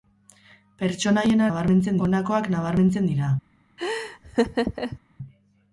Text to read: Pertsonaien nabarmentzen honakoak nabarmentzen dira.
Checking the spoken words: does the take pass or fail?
pass